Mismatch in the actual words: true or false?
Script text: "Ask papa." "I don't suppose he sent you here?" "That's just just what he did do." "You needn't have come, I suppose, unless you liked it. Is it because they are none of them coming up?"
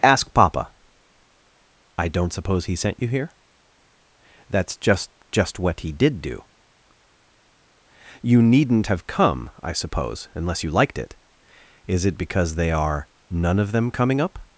false